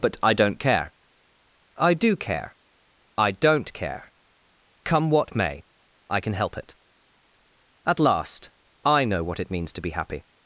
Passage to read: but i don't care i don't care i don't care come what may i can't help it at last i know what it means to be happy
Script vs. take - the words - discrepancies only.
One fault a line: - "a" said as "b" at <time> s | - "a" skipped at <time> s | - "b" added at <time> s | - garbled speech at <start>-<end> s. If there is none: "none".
- "don't" said as "do" at 1.9 s
- "can't" said as "can" at 6.2 s